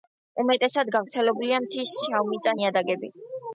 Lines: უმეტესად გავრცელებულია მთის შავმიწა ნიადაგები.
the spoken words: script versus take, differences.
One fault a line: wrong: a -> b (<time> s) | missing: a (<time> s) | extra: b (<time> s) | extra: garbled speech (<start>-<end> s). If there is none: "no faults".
no faults